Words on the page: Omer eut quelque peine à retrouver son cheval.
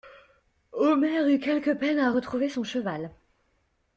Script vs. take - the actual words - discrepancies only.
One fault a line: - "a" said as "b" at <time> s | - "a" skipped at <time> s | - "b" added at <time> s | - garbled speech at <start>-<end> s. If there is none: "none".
none